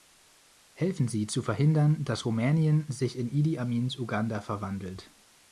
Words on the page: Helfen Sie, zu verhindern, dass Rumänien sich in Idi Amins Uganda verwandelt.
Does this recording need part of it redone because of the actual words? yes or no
no